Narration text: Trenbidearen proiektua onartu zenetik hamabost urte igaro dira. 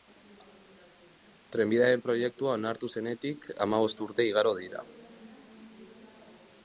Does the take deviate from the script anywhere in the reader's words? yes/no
no